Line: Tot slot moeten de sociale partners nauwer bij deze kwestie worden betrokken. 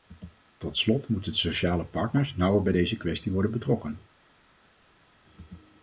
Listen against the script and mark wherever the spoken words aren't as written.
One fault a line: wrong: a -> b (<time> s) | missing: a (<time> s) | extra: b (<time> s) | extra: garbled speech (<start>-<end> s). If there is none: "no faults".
no faults